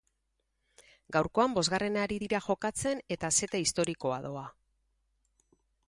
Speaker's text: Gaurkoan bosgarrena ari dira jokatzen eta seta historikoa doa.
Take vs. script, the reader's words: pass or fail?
pass